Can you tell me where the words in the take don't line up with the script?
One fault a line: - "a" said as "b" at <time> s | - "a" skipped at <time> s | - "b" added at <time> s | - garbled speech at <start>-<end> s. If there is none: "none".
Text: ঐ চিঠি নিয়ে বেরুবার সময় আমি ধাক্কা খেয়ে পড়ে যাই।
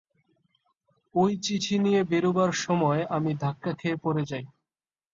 none